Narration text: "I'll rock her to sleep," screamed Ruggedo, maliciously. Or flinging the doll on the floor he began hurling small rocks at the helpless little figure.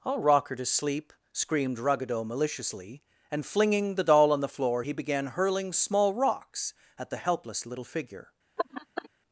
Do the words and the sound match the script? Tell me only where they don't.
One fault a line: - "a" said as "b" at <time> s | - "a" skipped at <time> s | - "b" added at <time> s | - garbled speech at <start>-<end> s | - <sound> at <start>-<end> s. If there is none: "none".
- "Or" said as "And" at 3.3 s
- laugh at 8.6-9.1 s